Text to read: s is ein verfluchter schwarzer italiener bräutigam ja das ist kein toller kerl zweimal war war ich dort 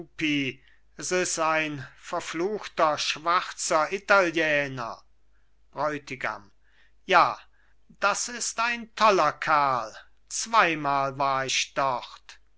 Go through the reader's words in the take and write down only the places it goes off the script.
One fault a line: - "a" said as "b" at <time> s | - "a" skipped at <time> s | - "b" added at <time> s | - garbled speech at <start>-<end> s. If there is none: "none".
- "kein" said as "ein" at 8.6 s
- "war" skipped at 11.5 s